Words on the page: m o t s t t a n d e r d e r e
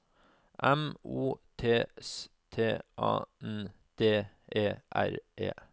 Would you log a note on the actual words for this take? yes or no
yes